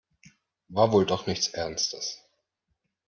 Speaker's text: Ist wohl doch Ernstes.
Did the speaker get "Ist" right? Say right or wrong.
wrong